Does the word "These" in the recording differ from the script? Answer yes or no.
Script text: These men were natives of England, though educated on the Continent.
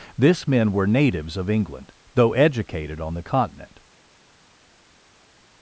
yes